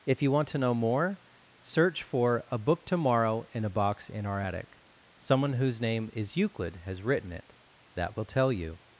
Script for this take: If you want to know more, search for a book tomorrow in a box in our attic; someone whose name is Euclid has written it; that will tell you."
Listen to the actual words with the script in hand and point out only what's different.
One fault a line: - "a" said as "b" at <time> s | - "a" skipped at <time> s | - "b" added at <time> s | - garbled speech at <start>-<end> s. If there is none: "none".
none